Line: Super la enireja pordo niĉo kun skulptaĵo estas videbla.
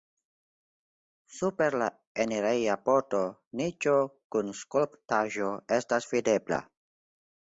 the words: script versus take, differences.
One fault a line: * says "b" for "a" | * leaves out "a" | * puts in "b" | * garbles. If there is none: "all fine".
all fine